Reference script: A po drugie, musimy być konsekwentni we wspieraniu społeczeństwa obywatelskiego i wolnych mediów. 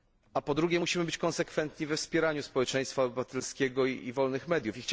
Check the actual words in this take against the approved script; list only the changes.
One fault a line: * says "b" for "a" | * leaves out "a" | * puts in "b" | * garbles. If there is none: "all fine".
all fine